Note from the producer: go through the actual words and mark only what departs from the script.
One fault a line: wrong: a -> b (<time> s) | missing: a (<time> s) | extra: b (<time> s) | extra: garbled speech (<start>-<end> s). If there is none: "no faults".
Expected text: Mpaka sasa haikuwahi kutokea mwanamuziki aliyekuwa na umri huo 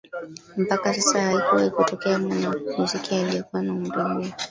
no faults